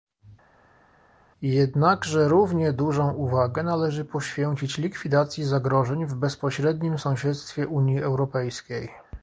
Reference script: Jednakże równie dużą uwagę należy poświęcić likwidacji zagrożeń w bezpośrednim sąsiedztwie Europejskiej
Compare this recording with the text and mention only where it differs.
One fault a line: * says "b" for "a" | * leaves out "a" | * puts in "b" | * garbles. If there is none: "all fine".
* puts in "Unii"